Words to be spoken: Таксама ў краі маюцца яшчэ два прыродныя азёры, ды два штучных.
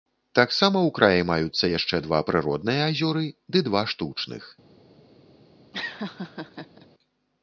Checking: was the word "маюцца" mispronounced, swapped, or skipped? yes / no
no